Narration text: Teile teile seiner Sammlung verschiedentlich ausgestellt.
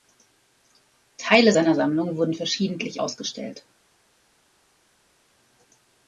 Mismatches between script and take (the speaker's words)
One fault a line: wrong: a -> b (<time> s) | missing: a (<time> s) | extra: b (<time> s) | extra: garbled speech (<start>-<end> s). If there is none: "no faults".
missing: teile (1.5 s)
extra: wurden (2.2 s)